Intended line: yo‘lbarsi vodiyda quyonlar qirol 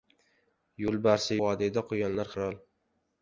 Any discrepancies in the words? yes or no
no